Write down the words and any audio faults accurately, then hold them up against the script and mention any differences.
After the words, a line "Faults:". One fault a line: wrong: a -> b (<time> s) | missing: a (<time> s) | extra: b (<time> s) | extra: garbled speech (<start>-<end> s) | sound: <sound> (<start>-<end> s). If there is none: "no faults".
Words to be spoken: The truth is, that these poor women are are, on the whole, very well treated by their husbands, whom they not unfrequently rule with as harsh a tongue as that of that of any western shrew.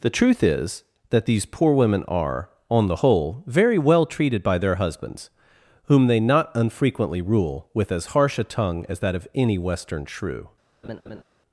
The truth is, that these poor women are, on the whole, very well treated by their husbands, whom they not unfrequently rule with as harsh a tongue as that of any western shrew.
Faults:
missing: are (2.5 s)
missing: that of (9.3 s)
sound: laugh (10.8-11.2 s)